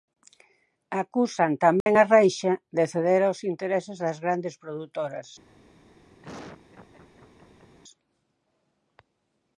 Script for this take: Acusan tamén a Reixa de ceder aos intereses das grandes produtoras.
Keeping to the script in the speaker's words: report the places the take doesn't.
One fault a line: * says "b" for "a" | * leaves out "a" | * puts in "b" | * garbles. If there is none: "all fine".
all fine